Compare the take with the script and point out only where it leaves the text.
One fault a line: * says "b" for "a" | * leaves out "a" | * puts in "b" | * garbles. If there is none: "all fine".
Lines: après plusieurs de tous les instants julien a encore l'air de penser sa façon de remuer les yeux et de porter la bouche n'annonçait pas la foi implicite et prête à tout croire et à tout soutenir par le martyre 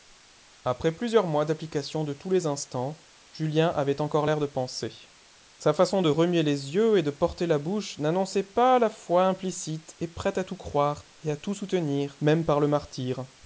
* puts in "mois d'application"
* says "avait" for "a"
* puts in "même"